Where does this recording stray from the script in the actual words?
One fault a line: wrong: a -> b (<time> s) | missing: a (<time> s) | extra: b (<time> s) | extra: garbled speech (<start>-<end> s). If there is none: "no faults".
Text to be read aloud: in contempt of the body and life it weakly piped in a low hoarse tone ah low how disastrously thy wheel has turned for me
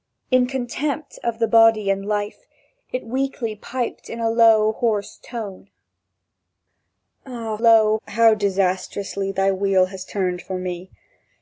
no faults